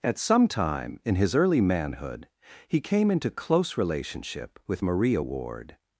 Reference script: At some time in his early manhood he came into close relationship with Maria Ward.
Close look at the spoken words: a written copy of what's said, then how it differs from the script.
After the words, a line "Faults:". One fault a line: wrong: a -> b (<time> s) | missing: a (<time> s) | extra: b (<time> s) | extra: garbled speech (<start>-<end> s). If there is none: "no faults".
At some time in his early manhood he came into close relationship with Maria Ward.
Faults:
no faults